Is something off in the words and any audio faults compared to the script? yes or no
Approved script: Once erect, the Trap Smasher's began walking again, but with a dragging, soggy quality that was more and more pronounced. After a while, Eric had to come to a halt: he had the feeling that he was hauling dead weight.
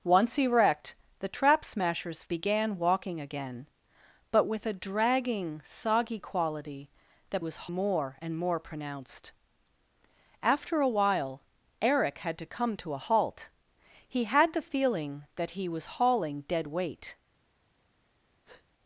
yes